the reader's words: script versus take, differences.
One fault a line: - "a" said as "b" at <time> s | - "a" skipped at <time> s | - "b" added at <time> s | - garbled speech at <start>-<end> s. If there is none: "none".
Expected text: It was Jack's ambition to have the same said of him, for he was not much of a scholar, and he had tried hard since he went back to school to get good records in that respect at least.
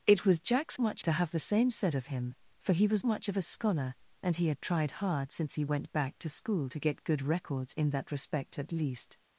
- "ambition" said as "much" at 0.8 s
- "not" skipped at 3.0 s